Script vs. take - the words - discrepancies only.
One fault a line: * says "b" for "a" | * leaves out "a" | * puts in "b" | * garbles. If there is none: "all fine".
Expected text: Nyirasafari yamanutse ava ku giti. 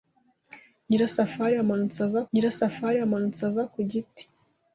* puts in "nyirasafari yamanutse ava"